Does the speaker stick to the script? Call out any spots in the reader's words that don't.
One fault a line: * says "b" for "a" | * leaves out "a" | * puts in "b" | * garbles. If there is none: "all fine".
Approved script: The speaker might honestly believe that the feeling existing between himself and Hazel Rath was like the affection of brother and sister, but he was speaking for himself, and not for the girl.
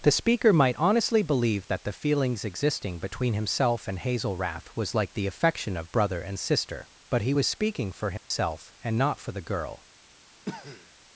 * says "feelings" for "feeling"